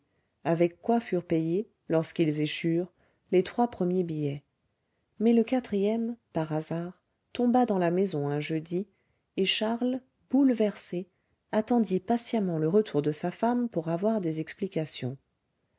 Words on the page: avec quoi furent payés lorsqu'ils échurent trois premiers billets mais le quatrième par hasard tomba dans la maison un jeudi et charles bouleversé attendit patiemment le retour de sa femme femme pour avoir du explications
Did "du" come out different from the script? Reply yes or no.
yes